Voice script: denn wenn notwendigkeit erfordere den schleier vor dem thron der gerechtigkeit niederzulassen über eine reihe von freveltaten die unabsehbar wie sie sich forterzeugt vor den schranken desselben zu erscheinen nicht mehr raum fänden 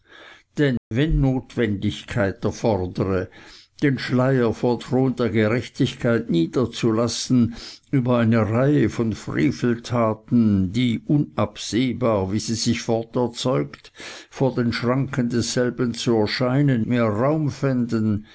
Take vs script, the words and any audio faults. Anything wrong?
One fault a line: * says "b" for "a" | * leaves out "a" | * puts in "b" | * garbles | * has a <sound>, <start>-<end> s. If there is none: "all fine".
* has a dropout, 0.8-0.9 s
* leaves out "dem"
* leaves out "nicht"